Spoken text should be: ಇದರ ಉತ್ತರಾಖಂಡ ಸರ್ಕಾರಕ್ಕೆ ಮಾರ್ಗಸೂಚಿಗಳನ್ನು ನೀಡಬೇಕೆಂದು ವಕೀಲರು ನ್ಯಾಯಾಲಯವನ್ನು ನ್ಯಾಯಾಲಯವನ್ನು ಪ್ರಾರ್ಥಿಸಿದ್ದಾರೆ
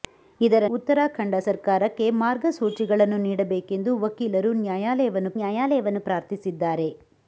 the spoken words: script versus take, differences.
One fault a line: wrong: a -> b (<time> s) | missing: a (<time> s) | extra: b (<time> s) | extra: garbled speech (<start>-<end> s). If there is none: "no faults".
no faults